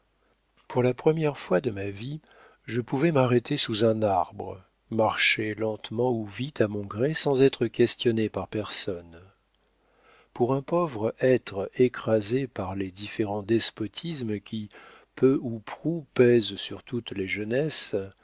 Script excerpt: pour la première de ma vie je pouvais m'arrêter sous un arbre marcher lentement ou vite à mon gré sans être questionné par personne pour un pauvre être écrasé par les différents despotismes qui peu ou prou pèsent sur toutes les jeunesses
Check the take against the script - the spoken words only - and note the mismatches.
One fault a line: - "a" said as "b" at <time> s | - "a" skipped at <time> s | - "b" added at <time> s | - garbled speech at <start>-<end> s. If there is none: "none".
- "fois" added at 1.4 s